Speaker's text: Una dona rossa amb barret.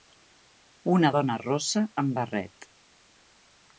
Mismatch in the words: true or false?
false